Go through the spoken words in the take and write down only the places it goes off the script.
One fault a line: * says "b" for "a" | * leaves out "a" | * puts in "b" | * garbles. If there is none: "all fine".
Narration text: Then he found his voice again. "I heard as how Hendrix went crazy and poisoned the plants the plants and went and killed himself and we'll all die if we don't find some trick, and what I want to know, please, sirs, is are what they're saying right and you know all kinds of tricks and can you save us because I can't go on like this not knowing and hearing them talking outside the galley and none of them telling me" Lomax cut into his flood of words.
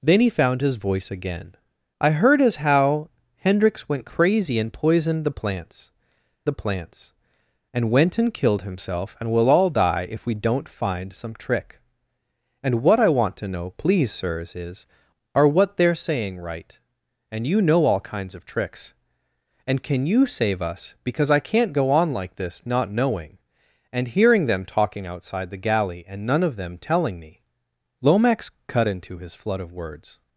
all fine